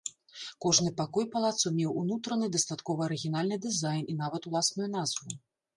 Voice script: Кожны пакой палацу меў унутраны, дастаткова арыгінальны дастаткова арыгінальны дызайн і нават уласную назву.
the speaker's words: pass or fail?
fail